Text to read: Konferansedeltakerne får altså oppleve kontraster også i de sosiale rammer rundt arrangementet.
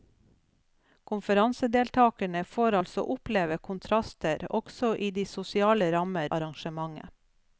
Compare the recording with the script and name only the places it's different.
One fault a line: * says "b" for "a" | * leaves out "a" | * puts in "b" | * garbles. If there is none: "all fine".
* leaves out "rundt"